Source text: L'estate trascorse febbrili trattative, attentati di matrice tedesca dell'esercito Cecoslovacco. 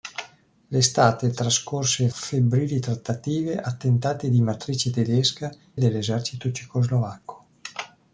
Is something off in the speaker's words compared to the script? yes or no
no